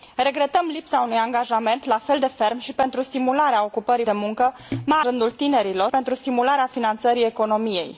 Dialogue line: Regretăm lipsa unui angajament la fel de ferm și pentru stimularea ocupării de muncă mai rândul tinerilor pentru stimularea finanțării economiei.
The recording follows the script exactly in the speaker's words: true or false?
true